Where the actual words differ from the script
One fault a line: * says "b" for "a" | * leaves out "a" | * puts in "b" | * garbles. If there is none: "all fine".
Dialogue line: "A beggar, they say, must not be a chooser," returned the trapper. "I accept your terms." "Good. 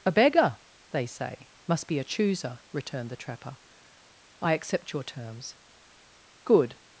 * leaves out "not"